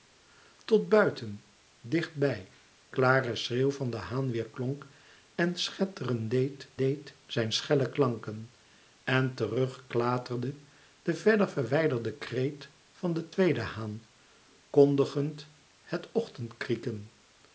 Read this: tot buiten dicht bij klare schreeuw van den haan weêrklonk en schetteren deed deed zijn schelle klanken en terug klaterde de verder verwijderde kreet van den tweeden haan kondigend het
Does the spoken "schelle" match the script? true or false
true